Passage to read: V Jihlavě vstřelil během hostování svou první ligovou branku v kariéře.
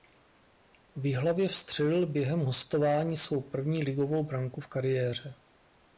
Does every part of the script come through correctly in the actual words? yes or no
yes